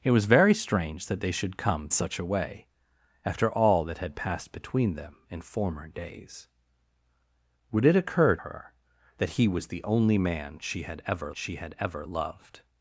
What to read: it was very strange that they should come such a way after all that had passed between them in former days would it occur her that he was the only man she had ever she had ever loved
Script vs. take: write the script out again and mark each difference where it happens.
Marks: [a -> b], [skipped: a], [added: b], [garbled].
it was very strange that they should come such a way after all that had passed between them in former days would it occur her that he was the only man she had ever she had ever loved